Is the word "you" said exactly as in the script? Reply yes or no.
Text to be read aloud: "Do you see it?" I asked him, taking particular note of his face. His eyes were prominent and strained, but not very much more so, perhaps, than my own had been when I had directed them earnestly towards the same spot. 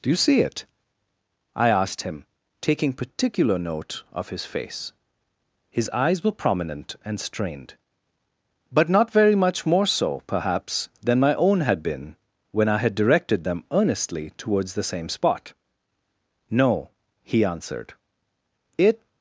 yes